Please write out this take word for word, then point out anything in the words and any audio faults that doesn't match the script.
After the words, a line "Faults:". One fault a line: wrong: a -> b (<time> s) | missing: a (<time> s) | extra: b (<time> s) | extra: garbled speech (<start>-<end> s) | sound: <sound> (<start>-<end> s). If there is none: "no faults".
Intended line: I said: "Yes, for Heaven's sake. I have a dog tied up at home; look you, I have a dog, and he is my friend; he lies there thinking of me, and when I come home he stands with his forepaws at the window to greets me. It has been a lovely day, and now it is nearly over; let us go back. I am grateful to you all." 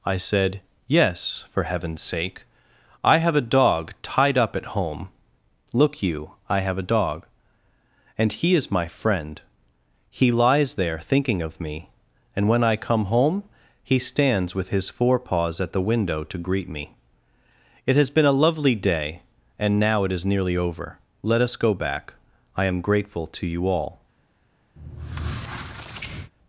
I said: "Yes, for Heaven's sake. I have a dog tied up at home; look you, I have a dog, and he is my friend; he lies there thinking of me, and when I come home he stands with his forepaws at the window to greet me. It has been a lovely day, and now it is nearly over; let us go back. I am grateful to you all."
Faults:
wrong: greets -> greet (16.4 s)
sound: squeak (24.8-26.3 s)